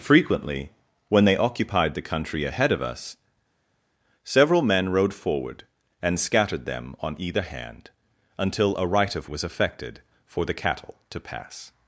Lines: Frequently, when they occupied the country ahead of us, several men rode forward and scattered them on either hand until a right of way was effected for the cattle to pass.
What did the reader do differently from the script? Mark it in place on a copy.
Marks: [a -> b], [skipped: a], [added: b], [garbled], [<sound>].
Frequently, when they occupied the country ahead of us, several men rode forward and scattered them on either hand until a right of [skipped: way] was effected for the cattle to pass.